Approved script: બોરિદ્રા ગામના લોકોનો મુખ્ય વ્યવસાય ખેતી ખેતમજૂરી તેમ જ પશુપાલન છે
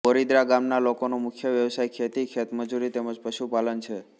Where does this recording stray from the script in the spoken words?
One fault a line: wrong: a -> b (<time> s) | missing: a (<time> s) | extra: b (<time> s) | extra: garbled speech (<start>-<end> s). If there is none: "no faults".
no faults